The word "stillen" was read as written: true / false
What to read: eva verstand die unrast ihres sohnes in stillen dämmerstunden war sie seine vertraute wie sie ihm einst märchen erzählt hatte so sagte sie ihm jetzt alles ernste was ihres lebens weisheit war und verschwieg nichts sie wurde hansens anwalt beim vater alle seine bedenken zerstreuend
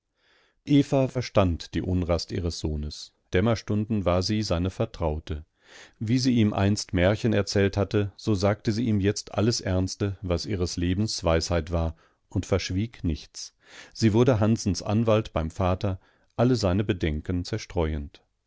false